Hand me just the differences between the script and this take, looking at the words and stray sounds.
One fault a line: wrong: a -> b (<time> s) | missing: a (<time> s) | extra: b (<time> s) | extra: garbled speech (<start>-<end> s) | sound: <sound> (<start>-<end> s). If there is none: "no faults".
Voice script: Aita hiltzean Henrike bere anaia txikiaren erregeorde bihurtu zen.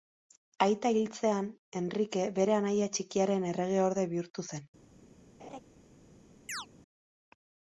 sound: laugh (5.4-5.6 s)
sound: chirp (6.5-6.7 s)